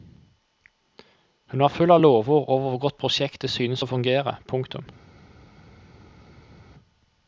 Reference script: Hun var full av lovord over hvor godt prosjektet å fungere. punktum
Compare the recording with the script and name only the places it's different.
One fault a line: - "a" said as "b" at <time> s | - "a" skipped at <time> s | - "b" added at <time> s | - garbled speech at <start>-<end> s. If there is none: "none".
- "synes" added at 3.5 s